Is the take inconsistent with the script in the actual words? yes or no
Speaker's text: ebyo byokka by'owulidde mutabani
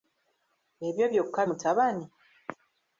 yes